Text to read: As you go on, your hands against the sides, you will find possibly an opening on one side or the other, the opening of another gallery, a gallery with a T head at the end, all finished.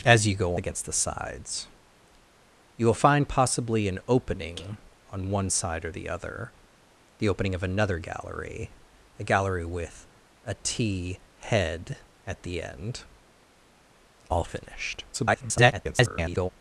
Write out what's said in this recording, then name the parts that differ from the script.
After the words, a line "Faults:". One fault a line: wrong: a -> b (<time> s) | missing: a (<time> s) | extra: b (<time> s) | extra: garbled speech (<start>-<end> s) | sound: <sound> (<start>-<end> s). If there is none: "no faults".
As you go against the sides, you will find possibly an opening on one side or the other, the opening of another gallery, a gallery with a T head at the end, all finished. [garbled]
Faults:
missing: on your hands (0.6 s)
extra: garbled speech (15.1-16.5 s)